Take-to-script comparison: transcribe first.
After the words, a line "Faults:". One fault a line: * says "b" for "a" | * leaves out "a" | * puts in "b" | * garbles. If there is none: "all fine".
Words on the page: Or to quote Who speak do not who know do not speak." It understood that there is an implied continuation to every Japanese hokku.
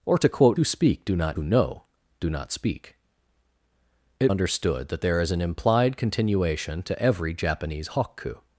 Or to quote Who speak do not who know do not speak." It understood that there is an implied continuation to every Japanese hokku.
Faults:
all fine